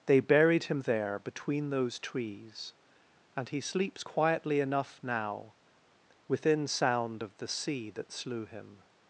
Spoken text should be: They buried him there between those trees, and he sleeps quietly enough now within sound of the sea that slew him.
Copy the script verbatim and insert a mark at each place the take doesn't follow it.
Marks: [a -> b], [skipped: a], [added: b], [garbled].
They buried him there between those trees, and he sleeps quietly enough now within sound of the sea that slew him.